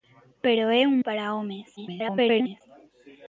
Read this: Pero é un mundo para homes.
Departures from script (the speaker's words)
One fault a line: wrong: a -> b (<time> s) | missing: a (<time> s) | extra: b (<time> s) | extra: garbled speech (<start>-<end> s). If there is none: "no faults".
missing: mundo (1.0 s)
extra: garbled speech (1.8-2.6 s)